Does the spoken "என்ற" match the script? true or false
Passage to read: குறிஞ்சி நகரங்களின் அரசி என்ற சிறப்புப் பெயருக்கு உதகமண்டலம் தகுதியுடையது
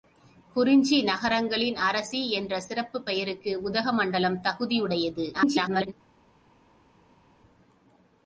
true